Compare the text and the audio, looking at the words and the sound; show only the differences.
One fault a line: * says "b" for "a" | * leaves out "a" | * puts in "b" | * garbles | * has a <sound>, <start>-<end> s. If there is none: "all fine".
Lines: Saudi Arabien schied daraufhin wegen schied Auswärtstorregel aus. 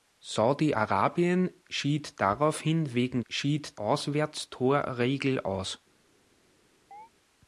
* has a chirp, 6.9-7.1 s